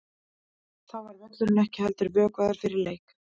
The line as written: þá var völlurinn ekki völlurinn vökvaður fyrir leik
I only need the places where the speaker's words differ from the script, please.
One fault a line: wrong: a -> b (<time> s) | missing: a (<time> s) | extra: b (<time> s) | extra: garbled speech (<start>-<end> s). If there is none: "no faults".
wrong: völlurinn -> heldur (1.9 s)